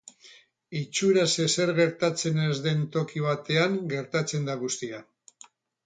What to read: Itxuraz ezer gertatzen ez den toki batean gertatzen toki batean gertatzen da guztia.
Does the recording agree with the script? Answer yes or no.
no